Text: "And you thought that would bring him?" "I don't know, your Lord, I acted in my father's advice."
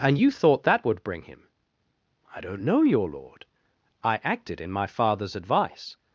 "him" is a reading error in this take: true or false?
false